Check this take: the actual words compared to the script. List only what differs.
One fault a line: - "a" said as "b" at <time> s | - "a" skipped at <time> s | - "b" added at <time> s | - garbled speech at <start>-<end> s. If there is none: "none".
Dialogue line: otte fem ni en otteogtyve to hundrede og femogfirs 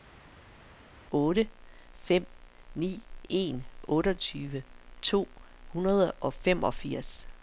none